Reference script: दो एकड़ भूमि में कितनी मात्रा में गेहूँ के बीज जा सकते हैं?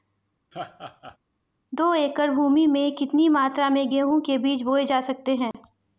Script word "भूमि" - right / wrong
right